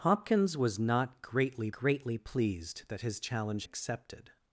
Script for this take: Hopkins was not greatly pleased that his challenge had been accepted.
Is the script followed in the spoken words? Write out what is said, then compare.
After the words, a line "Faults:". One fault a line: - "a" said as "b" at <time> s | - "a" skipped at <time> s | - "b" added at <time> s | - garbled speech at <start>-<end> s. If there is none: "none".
Hopkins was not greatly greatly pleased that his challenge accepted.
Faults:
- "greatly" added at 1.7 s
- "had been" skipped at 3.6 s